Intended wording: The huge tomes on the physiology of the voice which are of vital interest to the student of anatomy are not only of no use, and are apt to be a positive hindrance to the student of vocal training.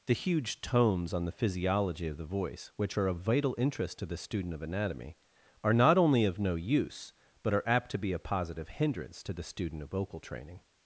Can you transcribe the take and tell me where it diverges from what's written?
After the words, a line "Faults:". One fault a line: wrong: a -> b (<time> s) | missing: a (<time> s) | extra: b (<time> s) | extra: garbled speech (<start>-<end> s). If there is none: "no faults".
The huge tomes on the physiology of the voice which are of vital interest to the student of anatomy are not only of no use, but are apt to be a positive hindrance to the student of vocal training.
Faults:
wrong: and -> but (7.4 s)